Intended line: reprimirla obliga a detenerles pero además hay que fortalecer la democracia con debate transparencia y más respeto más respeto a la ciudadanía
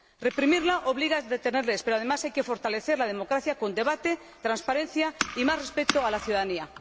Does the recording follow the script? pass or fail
fail